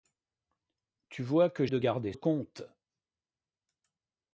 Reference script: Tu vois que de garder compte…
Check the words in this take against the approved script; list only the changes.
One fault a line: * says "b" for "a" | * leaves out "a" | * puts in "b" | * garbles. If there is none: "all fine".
all fine